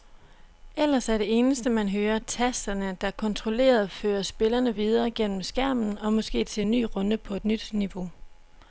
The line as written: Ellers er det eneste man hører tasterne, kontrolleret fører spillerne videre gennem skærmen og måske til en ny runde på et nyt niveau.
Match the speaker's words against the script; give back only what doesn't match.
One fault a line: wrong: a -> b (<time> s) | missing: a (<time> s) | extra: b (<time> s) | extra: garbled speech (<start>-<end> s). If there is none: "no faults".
extra: der (3.0 s)